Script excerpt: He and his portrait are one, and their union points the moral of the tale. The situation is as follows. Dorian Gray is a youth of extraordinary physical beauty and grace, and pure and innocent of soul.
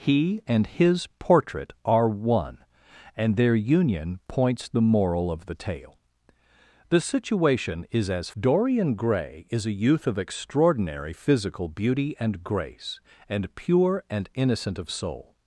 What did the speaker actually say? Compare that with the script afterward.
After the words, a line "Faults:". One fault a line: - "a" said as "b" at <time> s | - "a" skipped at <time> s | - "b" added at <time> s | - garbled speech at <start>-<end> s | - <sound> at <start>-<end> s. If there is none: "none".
He and his portrait are one, and their union points the moral of the tale. The situation is as. Dorian Gray is a youth of extraordinary physical beauty and grace, and pure and innocent of soul.
Faults:
- "follows" skipped at 8.3 s